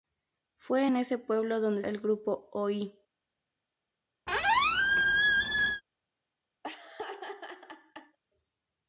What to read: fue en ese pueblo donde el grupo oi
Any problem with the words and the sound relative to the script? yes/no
yes